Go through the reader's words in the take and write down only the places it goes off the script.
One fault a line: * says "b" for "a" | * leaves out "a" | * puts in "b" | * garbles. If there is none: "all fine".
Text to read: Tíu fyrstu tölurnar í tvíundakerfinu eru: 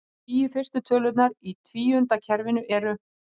all fine